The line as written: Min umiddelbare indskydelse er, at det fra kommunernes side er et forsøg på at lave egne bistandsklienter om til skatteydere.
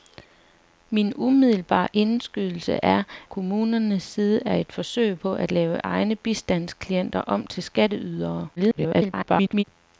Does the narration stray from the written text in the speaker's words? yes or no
yes